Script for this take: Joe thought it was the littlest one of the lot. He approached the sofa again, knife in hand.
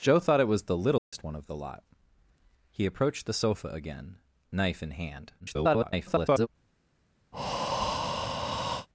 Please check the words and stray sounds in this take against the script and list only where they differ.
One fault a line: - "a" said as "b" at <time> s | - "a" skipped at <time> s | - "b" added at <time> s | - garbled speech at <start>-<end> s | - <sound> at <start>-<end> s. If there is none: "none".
- dropout at 1.0-1.1 s
- garbled speech at 5.4-6.5 s
- breath at 7.3-8.9 s